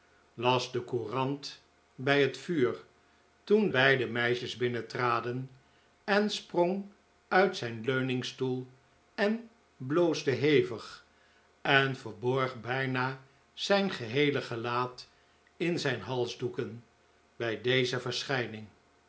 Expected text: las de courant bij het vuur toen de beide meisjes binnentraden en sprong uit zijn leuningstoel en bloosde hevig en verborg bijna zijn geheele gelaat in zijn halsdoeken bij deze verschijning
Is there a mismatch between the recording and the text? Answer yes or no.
yes